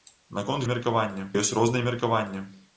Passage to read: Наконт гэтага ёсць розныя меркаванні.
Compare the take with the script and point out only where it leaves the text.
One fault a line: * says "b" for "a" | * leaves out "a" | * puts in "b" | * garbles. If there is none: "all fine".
* says "меркаванні" for "гэтага"